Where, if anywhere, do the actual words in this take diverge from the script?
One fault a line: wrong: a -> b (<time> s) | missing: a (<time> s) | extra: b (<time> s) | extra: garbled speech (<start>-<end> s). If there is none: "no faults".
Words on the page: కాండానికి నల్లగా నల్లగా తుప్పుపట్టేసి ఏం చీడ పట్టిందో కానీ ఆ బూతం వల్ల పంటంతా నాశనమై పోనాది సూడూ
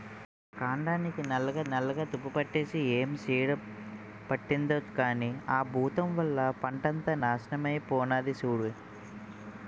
no faults